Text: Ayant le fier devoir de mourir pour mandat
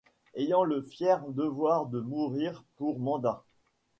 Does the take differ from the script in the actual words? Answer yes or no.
no